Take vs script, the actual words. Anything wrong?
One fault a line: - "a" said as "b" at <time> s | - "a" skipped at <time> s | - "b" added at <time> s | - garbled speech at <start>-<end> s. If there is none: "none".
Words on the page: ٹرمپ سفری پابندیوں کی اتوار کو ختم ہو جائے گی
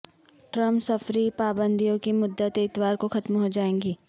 - "مدت" added at 2.1 s